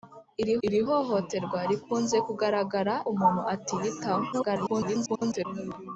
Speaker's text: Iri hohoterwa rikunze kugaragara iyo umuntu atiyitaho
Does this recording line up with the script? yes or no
no